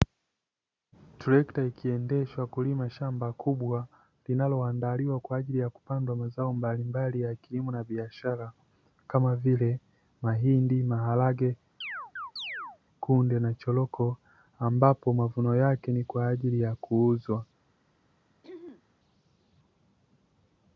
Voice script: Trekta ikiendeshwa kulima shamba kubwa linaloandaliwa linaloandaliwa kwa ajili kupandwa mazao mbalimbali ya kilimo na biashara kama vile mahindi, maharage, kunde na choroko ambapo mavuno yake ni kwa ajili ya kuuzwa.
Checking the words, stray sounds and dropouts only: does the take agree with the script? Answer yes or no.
no